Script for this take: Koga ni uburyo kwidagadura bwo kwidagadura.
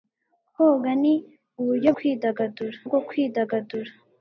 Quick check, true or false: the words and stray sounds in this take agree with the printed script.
true